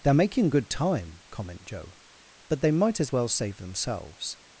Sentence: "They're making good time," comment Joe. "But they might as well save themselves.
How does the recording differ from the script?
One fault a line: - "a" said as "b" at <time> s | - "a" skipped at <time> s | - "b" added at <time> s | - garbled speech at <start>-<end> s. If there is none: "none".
none